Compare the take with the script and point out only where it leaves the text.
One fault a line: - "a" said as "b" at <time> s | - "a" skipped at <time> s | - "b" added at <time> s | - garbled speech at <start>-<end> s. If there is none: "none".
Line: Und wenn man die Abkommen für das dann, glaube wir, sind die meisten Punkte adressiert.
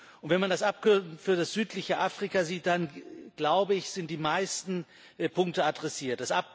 - "die" said as "das" at 0.5 s
- "südliche Afrika sieht" added at 1.5 s
- "wir" said as "ich" at 3.7 s